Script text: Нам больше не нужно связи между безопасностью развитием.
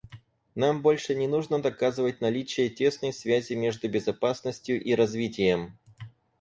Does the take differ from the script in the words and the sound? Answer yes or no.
yes